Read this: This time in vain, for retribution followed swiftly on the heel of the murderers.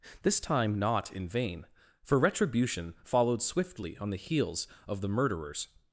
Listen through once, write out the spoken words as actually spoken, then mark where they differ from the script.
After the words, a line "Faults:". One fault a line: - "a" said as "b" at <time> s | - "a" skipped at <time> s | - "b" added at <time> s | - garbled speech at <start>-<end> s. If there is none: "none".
This time not in vain, for retribution followed swiftly on the heels of the murderers.
Faults:
- "not" added at 0.8 s
- "heel" said as "heels" at 4.2 s